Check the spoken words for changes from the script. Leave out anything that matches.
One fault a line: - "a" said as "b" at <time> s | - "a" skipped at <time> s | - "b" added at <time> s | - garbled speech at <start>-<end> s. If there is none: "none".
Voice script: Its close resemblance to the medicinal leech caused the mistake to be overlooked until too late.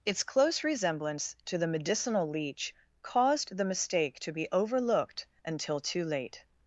none